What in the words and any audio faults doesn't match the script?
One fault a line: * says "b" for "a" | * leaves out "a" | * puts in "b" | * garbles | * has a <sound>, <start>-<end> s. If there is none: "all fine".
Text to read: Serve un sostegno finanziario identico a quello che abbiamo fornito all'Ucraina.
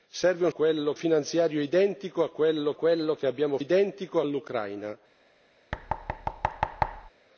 * says "quello" for "sostegno"
* puts in "quello"
* says "identico" for "fornito"
* has a thud, 5.7-7.1 s